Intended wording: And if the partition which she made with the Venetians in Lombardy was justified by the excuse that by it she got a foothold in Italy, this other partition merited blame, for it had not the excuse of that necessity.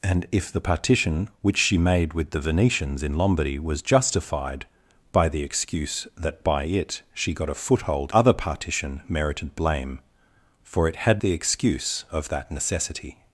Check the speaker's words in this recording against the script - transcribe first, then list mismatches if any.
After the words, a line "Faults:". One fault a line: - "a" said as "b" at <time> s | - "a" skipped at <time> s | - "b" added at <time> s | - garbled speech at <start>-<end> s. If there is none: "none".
And if the partition which she made with the Venetians in Lombardy was justified by the excuse that by it she got a foothold other partition merited blame, for it had the excuse of that necessity.
Faults:
- "in Italy this" skipped at 8.1 s
- "not" skipped at 11.2 s